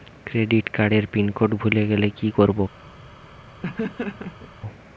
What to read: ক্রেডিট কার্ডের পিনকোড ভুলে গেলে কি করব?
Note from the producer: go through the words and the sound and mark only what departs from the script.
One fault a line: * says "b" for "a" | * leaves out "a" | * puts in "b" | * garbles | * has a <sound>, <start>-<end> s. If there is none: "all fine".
* has a laugh, 3.6-4.5 s